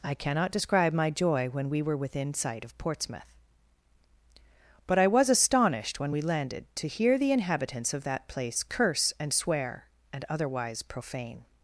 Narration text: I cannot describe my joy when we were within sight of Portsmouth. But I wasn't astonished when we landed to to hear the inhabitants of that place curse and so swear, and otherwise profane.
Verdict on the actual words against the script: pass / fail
fail